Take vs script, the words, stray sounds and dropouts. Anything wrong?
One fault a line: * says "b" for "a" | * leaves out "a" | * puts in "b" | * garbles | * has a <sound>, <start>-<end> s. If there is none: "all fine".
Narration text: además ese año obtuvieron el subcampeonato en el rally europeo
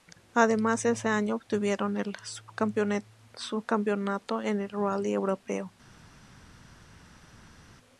all fine